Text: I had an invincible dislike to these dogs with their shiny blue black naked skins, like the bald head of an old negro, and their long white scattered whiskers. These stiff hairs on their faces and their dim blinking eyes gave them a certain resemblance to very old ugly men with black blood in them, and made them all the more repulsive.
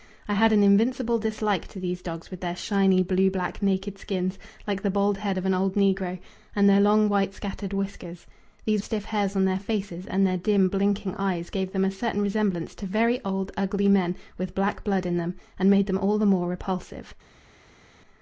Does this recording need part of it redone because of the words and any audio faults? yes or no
no